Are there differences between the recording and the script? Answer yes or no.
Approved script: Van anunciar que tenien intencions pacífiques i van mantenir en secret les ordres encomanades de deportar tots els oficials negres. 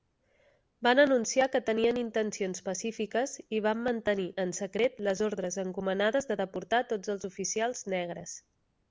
no